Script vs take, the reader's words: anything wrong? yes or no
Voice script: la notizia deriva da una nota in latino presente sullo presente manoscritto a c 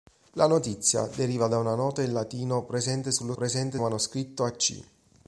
no